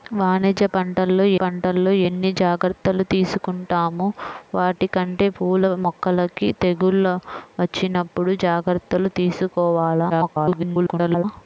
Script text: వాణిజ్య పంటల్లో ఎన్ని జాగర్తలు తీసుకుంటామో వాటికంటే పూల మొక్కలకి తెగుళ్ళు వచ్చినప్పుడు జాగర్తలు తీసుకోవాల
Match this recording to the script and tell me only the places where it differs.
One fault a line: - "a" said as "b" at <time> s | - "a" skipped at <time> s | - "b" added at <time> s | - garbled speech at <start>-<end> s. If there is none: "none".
- "పంటల్లో" added at 1.4 s
- garbled speech at 10.1-11.2 s